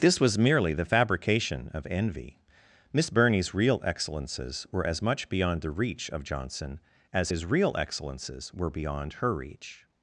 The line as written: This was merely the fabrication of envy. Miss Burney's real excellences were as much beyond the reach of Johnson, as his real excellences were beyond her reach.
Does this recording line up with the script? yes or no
yes